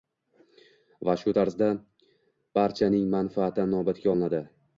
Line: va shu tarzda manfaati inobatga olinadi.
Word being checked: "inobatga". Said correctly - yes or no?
yes